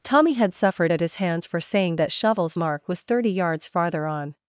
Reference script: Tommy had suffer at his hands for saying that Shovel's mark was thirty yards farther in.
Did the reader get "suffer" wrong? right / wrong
wrong